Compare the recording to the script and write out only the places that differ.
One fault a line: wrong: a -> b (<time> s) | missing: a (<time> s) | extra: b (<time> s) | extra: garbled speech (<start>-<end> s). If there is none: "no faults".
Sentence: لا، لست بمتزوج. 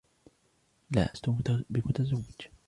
no faults